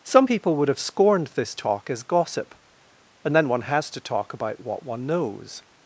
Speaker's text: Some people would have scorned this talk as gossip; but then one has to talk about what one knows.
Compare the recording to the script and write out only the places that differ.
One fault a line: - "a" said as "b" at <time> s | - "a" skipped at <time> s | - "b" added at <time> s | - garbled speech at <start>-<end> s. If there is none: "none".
- "but" said as "and" at 3.2 s